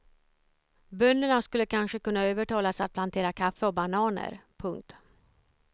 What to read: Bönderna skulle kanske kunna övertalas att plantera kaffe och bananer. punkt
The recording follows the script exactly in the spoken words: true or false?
true